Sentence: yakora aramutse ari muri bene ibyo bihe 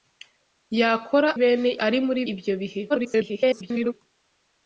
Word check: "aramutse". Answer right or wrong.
wrong